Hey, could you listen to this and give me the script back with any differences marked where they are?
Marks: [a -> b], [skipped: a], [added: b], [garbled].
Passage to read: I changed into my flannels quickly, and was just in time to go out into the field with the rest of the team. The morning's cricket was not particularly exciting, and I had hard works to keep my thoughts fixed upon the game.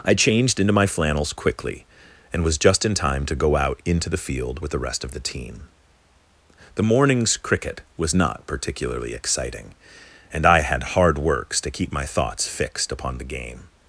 I changed into my flannels quickly, and was just in time to go out into the field with the rest of the team. The morning's cricket was not particularly exciting, and I had hard works to keep my thoughts fixed upon the game.